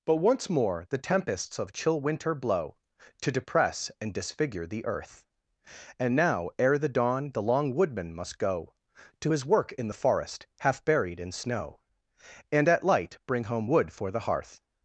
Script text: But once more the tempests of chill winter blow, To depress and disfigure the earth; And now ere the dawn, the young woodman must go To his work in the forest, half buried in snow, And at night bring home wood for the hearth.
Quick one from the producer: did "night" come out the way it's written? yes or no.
no